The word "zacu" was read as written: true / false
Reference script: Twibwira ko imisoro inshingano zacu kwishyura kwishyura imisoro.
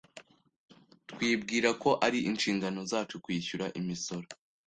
true